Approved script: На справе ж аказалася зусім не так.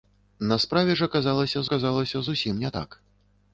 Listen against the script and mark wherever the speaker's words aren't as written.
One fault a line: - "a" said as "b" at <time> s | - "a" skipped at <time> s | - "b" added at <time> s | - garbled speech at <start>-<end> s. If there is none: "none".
- "аказалася" added at 1.7 s